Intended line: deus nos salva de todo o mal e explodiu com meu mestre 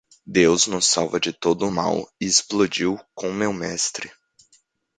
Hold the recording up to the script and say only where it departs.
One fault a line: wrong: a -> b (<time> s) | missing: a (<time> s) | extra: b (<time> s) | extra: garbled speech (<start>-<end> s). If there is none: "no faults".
no faults